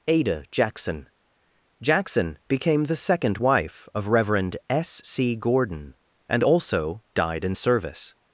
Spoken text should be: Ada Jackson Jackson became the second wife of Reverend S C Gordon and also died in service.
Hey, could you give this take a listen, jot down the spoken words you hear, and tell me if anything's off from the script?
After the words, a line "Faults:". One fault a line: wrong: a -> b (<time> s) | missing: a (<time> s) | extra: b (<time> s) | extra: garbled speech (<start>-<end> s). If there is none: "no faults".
Ada Jackson Jackson became the second wife of Reverend S C Gordon and also died in service.
Faults:
no faults